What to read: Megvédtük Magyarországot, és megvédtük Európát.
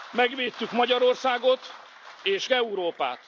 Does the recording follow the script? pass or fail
fail